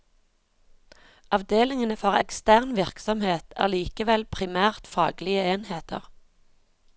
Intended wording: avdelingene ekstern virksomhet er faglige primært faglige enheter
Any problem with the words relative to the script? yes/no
yes